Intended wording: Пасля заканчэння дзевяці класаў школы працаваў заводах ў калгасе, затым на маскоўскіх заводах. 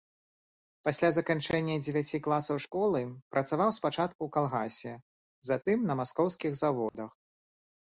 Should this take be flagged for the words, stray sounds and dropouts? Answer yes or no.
yes